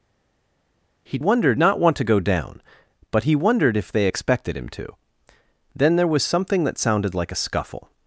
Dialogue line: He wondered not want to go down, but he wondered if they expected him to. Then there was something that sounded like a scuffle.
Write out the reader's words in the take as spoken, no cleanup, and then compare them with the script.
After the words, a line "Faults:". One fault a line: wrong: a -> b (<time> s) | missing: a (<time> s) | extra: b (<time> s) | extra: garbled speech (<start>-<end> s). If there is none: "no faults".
He wondered not want to go down, but he wondered if they expected him to. Then there was something that sounded like a scuffle.
Faults:
no faults